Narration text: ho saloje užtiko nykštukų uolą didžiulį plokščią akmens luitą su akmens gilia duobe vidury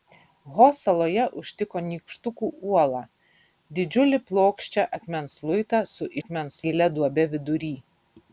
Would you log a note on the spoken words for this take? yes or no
no